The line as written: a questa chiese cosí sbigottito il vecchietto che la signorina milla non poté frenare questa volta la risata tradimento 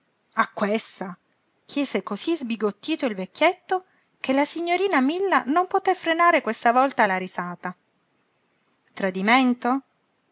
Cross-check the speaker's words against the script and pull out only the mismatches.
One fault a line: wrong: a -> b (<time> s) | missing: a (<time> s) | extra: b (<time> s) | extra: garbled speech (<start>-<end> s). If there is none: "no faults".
no faults